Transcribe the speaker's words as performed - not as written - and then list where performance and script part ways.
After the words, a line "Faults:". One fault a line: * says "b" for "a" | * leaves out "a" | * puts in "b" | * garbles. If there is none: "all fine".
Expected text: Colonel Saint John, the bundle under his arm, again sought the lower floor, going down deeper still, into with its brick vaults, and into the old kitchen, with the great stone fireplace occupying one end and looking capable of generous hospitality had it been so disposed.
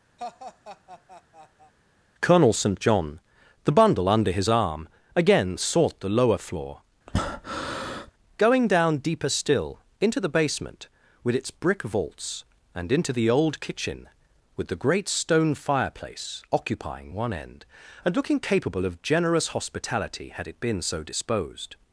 Colonel Saint John, the bundle under his arm, again sought the lower floor, going down deeper still, into the basement, with its brick vaults, and into the old kitchen, with the great stone fireplace occupying one end and looking capable of generous hospitality had it been so disposed.
Faults:
* puts in "the basement"